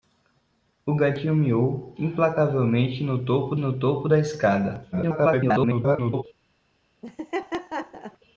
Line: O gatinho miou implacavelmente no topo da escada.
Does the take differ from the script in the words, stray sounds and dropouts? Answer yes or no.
yes